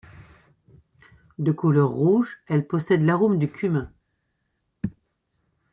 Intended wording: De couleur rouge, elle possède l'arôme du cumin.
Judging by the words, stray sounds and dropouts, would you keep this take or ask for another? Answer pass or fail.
pass